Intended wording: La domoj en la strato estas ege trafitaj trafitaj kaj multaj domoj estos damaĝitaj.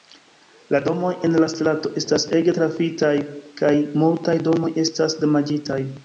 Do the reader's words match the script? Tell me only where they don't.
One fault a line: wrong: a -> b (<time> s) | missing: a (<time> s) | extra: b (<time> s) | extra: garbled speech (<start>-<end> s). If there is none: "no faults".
missing: trafitaj (3.1 s)
wrong: estos -> estas (4.8 s)